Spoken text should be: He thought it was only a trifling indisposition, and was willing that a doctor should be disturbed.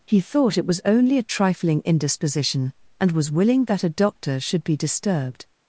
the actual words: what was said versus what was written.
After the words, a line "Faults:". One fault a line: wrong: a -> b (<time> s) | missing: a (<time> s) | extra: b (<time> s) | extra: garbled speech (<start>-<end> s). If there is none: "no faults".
He thought it was only a trifling indisposition, and was willing that a doctor should be disturbed.
Faults:
no faults